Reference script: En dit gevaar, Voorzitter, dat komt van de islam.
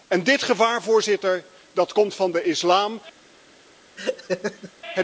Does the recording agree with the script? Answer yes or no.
yes